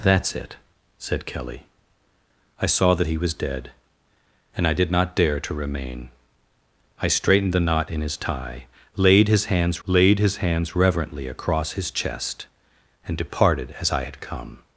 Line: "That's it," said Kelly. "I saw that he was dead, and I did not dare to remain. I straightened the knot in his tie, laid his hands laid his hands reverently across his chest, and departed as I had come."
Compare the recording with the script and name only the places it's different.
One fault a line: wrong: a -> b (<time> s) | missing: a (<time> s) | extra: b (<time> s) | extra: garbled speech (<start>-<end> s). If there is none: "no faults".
no faults